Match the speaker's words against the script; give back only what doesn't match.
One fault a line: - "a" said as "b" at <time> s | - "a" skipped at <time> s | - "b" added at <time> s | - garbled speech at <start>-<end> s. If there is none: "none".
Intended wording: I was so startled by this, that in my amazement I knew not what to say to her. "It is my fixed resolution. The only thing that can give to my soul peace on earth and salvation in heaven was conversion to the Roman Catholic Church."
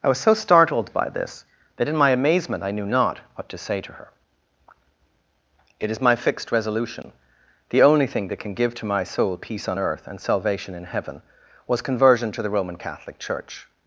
none